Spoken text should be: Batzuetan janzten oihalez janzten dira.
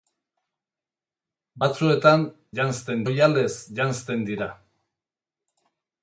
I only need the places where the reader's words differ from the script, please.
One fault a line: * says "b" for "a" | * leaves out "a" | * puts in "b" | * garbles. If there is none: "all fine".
all fine